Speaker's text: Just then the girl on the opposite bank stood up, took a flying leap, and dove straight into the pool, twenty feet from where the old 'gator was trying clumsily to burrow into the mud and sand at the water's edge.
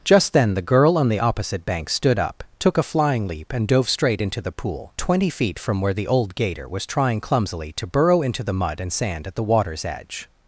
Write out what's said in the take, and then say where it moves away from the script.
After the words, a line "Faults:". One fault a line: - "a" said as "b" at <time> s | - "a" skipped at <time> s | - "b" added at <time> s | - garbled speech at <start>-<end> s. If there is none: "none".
Just then the girl on the opposite bank stood up, took a flying leap, and dove straight into the pool, twenty feet from where the old 'gator was trying clumsily to burrow into the mud and sand at the water's edge.
Faults:
none